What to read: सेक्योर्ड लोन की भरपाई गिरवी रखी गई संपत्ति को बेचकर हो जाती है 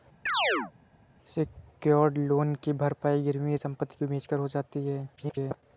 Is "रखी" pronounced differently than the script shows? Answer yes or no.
yes